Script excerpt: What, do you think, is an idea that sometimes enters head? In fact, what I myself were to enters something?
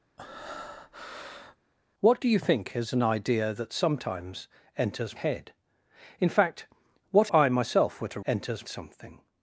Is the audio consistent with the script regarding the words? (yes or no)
yes